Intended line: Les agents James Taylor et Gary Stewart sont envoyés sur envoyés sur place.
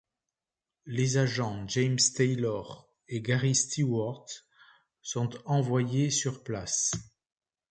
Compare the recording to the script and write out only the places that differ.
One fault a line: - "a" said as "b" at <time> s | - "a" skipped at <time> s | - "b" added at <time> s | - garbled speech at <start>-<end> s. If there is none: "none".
- "envoyés sur" skipped at 6.4 s